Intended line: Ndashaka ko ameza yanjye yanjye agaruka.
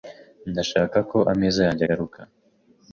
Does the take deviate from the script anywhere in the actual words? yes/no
yes